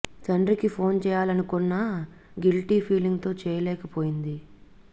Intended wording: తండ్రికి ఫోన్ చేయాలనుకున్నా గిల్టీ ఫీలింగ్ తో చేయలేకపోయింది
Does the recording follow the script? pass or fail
pass